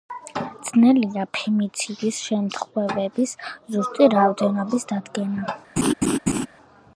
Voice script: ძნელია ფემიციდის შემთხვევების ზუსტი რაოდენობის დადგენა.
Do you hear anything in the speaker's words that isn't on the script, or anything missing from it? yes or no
no